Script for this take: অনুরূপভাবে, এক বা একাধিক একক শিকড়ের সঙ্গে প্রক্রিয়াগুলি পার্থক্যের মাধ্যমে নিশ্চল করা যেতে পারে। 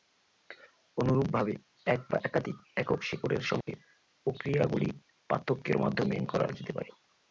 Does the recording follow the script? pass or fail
fail